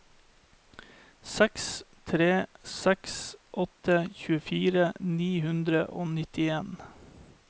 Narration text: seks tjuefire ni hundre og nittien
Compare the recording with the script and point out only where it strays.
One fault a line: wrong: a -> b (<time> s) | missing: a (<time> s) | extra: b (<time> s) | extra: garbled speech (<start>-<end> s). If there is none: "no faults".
extra: tre seks åtte (2.1 s)